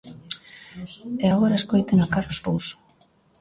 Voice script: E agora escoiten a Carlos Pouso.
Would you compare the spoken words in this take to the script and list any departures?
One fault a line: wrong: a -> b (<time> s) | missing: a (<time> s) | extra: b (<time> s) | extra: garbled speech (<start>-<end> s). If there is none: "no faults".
no faults